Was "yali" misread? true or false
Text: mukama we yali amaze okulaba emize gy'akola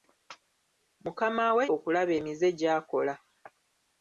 true